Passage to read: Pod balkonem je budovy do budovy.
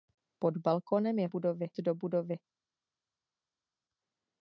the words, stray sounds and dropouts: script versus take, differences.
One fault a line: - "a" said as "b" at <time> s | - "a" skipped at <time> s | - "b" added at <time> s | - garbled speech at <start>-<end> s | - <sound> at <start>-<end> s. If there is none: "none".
none